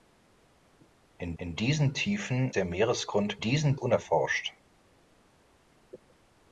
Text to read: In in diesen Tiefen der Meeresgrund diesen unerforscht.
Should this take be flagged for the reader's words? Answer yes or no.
no